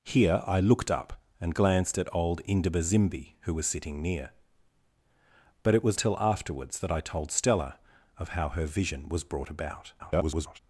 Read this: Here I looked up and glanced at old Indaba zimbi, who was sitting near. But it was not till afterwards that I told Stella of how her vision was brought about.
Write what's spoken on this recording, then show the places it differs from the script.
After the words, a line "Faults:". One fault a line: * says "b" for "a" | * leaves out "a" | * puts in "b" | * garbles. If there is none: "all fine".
Here I looked up and glanced at old Indaba zimbi, who was sitting near. But it was till afterwards that I told Stella of how her vision was brought about. [garbled]
Faults:
* leaves out "not"
* garbles